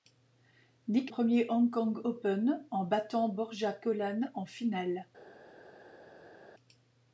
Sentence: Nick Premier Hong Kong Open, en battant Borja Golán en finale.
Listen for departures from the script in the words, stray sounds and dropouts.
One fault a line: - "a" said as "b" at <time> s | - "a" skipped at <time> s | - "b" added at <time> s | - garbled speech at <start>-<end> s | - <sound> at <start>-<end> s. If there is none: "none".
none